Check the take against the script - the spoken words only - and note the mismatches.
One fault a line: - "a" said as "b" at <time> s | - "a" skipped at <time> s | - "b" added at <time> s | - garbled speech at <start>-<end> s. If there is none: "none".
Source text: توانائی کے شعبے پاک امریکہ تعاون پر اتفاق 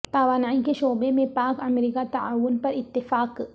- "میں" added at 1.1 s